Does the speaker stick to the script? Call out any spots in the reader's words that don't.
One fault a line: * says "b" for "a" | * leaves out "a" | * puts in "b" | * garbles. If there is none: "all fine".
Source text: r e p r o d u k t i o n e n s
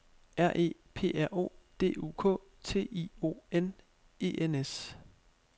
all fine